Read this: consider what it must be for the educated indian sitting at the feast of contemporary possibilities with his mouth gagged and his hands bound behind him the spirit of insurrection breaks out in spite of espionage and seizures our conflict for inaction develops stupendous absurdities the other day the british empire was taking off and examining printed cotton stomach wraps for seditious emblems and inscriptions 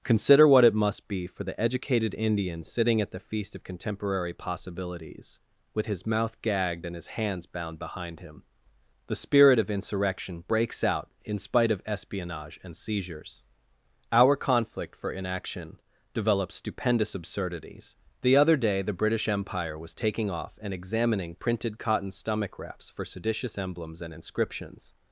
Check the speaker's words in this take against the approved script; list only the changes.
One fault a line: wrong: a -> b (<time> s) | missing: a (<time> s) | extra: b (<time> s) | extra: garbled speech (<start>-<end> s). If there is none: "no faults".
no faults